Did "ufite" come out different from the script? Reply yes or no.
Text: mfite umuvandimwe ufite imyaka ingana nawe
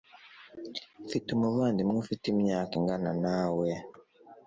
no